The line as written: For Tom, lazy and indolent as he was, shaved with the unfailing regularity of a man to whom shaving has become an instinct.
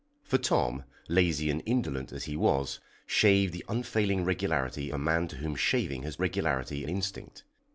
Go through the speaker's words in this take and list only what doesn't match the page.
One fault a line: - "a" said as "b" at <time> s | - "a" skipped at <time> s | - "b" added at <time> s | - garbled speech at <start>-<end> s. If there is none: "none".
- "with" skipped at 3.5 s
- "of" skipped at 4.9 s
- "become" said as "regularity" at 6.2 s